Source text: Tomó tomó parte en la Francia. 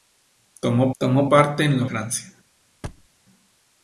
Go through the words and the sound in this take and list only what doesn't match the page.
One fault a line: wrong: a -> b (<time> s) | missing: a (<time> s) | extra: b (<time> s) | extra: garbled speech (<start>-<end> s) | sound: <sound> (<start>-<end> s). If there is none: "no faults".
sound: thud (2.8-3.1 s)